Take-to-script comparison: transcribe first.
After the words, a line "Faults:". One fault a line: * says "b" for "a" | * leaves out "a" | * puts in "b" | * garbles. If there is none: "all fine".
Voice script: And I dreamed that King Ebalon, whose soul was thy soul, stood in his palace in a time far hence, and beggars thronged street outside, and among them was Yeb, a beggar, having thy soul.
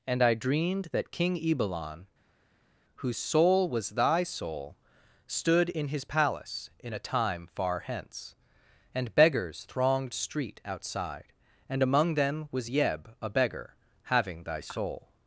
And I dreamed that King Ebalon, whose soul was thy soul, stood in his palace in a time far hence, and beggars thronged street outside, and among them was Yeb, a beggar, having thy soul.
Faults:
all fine